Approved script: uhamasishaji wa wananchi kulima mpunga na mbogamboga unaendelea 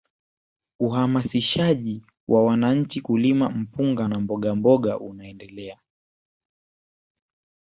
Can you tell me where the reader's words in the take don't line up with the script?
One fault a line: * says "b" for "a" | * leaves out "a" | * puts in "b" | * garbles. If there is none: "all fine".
all fine